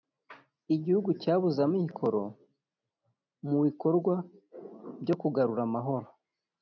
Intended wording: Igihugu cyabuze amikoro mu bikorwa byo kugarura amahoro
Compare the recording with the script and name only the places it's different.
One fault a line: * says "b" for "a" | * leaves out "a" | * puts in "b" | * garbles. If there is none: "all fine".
all fine